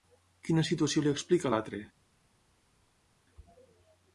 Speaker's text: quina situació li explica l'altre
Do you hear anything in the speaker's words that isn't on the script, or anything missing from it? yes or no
no